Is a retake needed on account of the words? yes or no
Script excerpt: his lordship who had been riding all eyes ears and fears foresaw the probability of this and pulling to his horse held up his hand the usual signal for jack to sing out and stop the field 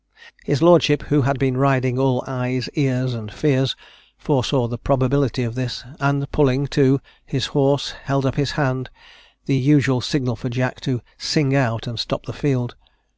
no